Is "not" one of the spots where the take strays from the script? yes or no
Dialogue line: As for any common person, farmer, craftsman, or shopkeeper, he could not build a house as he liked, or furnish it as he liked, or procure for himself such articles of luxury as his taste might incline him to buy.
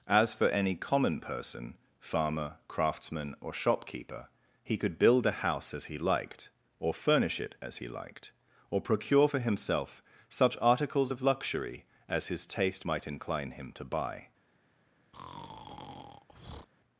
yes